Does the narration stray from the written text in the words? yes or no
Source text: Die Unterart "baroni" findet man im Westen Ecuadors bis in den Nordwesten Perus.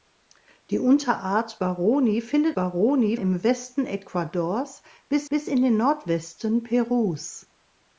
yes